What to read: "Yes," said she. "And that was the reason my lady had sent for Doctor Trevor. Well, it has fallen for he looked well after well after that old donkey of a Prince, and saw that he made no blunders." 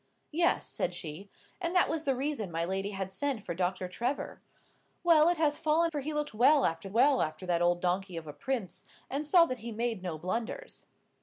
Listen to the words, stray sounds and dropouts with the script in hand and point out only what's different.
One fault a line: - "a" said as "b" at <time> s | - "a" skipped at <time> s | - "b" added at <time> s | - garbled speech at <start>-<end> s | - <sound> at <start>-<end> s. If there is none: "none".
none